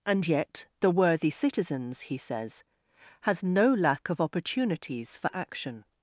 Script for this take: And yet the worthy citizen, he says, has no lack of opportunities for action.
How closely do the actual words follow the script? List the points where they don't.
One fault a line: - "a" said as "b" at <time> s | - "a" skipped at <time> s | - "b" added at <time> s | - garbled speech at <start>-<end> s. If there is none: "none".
- "citizen" said as "citizens" at 1.3 s